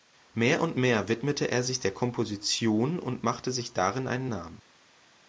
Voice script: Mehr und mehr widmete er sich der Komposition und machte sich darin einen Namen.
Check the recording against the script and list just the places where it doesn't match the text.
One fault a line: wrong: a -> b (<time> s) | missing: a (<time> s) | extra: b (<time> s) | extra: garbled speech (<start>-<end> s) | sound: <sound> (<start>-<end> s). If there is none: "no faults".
no faults